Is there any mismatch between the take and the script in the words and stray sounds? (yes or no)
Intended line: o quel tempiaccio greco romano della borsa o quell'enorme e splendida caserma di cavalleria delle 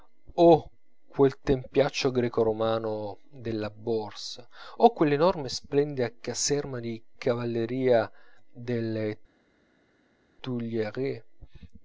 no